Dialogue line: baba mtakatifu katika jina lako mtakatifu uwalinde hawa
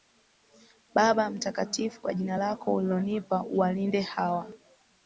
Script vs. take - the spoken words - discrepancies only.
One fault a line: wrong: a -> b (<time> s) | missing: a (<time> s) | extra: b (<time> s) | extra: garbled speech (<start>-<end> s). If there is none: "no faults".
wrong: katika -> kwa (2.0 s)
wrong: mtakatifu -> ulilonipa (2.7 s)